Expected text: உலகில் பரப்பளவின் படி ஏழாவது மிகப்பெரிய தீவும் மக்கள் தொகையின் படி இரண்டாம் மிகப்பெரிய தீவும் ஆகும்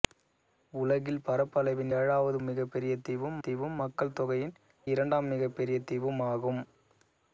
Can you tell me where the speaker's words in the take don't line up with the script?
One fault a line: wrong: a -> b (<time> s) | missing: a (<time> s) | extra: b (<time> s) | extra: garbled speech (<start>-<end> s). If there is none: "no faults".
missing: படி (1.9 s)
extra: தீவும் (3.4 s)
missing: படி (4.5 s)